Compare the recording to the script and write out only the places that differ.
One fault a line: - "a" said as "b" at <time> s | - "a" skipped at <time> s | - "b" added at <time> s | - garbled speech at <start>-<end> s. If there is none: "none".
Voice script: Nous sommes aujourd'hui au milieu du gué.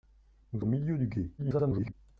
- "sommes aujourd'hui" skipped at 0.6 s
- garbled speech at 1.4-1.9 s